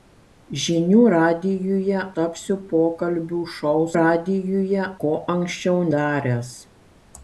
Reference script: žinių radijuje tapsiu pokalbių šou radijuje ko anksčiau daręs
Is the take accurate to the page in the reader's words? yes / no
yes